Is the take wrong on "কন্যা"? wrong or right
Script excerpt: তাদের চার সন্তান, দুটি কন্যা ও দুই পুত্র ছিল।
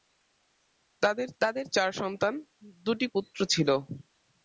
wrong